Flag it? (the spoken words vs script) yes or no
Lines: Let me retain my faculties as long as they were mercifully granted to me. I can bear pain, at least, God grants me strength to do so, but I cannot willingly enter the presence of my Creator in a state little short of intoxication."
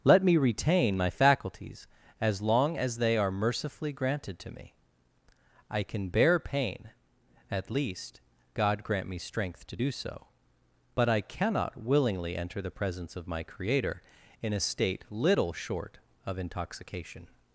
yes